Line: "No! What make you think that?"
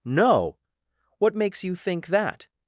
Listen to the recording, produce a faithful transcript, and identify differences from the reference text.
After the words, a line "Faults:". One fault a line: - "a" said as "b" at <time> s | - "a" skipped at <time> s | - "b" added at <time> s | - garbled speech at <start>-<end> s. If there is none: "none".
"No! What makes you think that?"
Faults:
- "make" said as "makes" at 1.4 s